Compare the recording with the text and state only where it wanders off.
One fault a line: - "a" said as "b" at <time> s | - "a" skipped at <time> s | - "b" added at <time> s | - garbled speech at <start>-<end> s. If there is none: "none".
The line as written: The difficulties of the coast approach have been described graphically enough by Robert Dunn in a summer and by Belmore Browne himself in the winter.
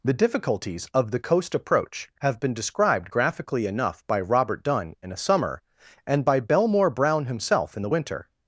none